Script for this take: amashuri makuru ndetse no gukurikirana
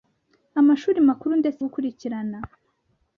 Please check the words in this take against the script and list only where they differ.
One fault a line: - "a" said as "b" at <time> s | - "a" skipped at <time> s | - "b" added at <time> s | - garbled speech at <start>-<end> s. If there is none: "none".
- "no" skipped at 1.6 s